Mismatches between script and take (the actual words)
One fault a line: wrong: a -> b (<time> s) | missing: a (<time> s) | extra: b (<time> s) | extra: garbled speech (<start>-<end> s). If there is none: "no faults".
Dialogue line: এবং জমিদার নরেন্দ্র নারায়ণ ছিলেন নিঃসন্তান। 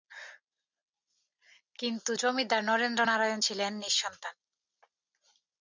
wrong: এবং -> কিন্তু (1.8 s)